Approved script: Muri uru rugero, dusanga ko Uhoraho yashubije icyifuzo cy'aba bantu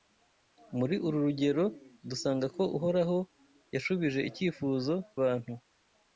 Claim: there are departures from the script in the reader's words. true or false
true